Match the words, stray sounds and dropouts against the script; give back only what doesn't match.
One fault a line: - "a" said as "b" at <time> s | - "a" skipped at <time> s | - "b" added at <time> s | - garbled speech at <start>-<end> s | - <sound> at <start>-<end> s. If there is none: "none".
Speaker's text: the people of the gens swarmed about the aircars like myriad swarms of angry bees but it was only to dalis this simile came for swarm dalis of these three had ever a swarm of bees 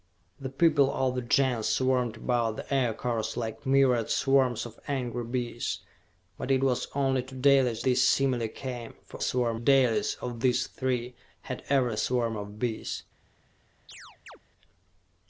- chirp at 13.9-14.4 s